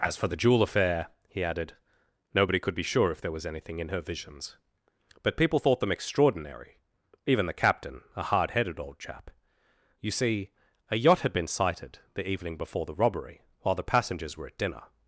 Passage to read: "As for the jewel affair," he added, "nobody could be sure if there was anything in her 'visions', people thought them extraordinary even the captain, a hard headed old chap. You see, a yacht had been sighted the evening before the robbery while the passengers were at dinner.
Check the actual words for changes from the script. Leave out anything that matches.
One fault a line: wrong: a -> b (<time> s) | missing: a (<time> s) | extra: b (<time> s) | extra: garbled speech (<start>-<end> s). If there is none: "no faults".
extra: but (5.2 s)